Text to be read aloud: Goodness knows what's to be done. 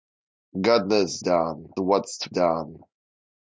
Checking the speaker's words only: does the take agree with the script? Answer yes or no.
no